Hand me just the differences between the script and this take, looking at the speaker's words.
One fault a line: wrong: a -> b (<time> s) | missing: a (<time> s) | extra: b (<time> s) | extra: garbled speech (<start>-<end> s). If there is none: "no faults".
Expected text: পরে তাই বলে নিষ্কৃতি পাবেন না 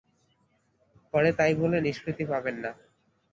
no faults